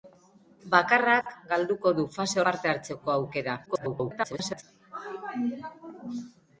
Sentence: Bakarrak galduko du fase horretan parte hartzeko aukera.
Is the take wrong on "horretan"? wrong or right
wrong